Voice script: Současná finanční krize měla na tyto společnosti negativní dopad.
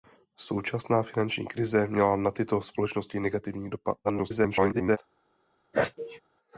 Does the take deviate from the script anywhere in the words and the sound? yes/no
yes